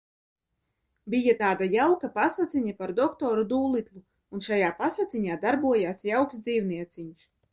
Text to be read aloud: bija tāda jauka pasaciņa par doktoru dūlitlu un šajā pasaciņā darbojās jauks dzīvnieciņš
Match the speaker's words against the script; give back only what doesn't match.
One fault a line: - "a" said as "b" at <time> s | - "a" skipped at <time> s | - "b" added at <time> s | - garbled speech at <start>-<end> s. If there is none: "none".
none